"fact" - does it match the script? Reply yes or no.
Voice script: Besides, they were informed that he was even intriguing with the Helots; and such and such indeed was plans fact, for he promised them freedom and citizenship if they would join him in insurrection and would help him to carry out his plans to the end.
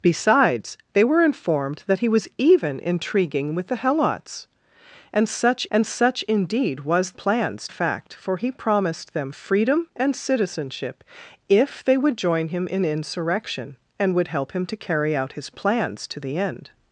yes